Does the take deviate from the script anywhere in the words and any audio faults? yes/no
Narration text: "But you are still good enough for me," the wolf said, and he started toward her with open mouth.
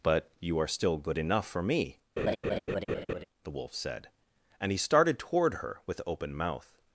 yes